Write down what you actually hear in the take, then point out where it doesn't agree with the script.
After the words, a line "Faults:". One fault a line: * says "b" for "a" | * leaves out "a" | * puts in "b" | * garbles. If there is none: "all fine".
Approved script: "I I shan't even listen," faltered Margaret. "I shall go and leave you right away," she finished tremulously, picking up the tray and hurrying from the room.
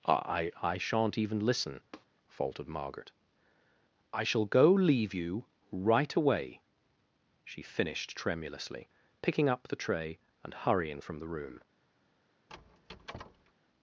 "I I shan't even listen," faltered Margaret. "I shall go leave you right away," she finished tremulously, picking up the tray and hurrying from the room.
Faults:
* leaves out "and"